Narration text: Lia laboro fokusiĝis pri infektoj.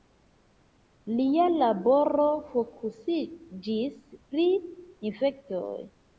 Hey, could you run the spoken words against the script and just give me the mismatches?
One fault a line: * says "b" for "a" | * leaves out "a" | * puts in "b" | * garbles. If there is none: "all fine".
all fine